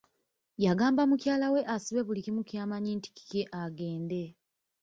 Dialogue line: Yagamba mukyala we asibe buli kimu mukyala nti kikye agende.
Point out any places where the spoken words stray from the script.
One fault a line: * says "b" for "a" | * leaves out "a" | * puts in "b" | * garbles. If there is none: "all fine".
* says "ky'amanyi" for "mukyala"